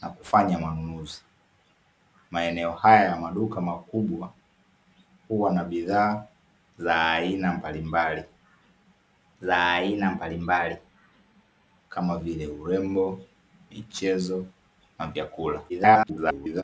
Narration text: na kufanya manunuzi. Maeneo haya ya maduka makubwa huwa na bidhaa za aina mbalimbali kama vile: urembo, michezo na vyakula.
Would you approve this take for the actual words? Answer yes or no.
no